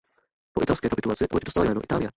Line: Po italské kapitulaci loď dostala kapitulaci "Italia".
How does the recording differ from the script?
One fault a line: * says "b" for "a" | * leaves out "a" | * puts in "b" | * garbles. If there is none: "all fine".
* says "jméno" for "kapitulaci"